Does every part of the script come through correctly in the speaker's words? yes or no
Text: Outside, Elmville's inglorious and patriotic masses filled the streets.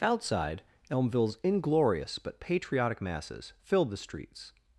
no